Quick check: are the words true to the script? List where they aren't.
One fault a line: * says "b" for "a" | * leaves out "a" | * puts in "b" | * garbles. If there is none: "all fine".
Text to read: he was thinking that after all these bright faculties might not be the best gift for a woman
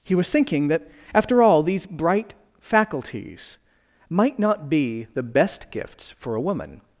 * says "gifts" for "gift"